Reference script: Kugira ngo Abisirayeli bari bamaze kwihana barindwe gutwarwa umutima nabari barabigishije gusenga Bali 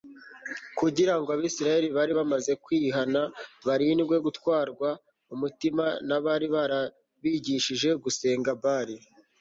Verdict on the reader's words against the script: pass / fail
pass